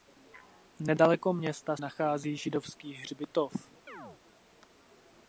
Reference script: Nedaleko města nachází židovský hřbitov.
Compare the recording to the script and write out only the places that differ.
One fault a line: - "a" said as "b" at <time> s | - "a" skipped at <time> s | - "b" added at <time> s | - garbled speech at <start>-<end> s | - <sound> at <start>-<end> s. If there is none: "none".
- chirp at 3.9-4.2 s